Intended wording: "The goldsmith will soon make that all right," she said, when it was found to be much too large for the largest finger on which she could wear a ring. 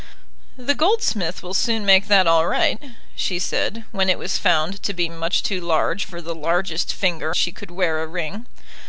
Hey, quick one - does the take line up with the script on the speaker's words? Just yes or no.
no